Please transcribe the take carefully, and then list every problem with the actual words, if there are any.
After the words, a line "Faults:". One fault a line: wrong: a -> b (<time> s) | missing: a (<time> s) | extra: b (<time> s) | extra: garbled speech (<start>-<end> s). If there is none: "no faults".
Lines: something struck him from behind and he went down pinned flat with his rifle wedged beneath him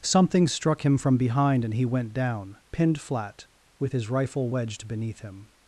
something struck him from behind and he went down pinned flat with his rifle wedged beneath him
Faults:
no faults